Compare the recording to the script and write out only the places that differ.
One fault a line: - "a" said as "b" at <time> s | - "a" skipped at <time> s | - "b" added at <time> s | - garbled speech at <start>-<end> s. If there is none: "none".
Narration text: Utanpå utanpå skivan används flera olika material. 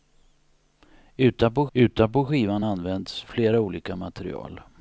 none